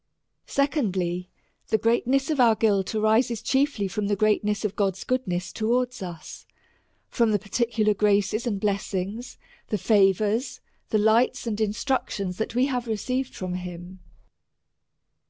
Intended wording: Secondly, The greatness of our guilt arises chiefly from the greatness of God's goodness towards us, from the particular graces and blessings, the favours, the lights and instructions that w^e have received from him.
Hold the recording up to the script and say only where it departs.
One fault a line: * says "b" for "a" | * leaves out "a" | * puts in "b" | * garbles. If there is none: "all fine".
all fine